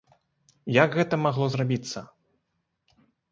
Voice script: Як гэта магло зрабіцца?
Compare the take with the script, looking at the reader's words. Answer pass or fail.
pass